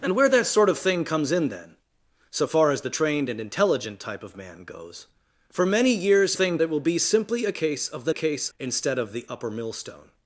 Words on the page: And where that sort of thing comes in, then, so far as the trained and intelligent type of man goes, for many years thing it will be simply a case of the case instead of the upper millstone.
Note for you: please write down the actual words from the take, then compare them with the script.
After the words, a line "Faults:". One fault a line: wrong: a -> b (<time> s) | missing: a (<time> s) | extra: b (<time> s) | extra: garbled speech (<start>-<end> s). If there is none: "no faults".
And where that sort of thing comes in, then, so far as the trained and intelligent type of man goes, for many years thing it will be simply a case of the case instead of the upper millstone.
Faults:
no faults